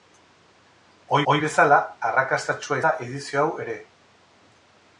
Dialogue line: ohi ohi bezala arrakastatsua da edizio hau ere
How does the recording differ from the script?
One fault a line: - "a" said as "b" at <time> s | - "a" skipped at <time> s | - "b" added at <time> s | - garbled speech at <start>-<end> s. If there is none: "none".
none